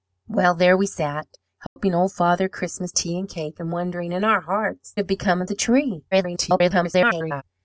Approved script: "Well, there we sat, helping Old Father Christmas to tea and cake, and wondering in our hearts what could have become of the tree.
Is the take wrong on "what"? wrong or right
wrong